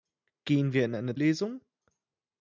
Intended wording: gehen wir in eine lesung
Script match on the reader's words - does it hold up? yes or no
yes